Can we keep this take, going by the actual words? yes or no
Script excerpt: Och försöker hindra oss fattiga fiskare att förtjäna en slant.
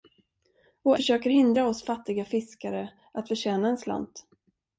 yes